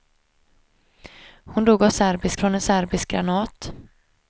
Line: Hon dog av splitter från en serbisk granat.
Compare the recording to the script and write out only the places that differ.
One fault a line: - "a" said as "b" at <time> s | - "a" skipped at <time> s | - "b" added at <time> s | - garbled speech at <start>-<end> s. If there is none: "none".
- "splitter" said as "serbisk" at 1.9 s